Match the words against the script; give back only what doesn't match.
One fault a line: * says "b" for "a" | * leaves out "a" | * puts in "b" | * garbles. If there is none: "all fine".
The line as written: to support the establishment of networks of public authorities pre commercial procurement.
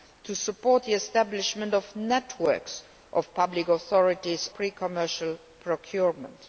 all fine